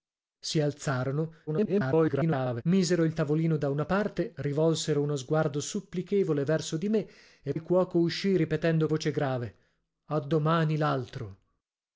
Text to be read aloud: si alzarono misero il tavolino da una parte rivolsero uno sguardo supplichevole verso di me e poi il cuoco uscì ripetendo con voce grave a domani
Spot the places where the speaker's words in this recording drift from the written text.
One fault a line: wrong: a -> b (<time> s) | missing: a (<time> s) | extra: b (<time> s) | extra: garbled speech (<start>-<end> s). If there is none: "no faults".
extra: garbled speech (1.5-2.6 s)
missing: poi (7.5 s)
missing: con (8.9 s)